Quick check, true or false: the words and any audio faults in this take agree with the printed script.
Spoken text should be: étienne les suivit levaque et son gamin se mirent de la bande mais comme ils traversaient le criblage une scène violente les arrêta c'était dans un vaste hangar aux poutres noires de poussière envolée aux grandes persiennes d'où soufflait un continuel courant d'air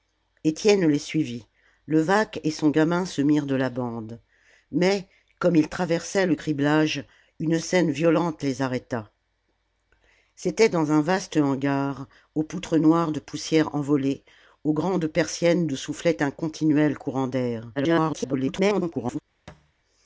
false